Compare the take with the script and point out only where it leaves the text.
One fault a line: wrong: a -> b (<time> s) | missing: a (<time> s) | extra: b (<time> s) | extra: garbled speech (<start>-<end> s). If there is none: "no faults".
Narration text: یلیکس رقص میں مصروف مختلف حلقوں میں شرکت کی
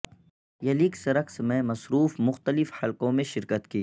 no faults